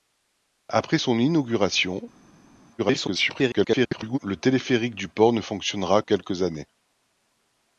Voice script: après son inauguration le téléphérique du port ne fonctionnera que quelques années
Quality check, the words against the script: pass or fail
fail